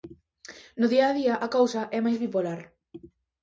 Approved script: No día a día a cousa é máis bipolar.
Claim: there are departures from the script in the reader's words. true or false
false